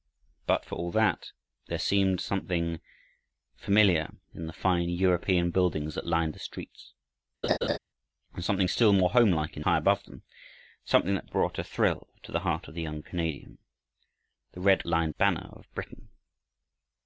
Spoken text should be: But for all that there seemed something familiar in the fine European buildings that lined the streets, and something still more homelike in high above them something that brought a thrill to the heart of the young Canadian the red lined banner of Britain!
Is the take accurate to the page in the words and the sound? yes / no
no